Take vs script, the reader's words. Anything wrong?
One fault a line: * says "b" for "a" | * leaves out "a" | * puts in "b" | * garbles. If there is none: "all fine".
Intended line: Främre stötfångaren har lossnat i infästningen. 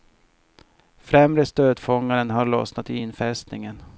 all fine